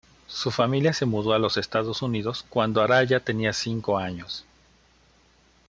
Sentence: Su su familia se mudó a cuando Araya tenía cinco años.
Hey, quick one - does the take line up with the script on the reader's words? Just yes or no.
no